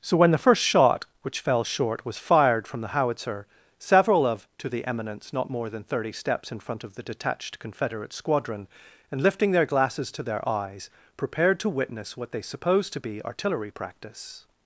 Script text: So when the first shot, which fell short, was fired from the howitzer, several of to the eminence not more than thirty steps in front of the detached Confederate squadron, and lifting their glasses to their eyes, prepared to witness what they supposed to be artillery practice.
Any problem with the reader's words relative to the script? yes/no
no